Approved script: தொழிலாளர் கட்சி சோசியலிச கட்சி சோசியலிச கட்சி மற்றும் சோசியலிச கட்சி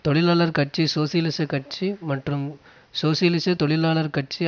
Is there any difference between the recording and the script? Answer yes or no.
yes